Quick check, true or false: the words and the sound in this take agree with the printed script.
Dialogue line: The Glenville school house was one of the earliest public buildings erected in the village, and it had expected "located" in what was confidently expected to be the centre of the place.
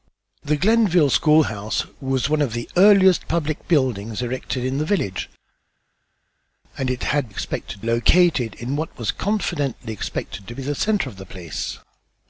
true